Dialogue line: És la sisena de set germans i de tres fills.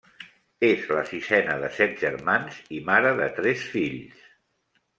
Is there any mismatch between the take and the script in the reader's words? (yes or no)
yes